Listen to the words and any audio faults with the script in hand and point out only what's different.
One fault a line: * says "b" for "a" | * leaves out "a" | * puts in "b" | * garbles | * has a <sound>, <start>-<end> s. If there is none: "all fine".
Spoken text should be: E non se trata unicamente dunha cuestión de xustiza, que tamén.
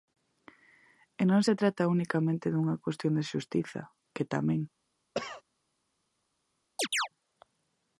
* has a cough, 5.1-5.4 s
* has a chirp, 6.8-7.1 s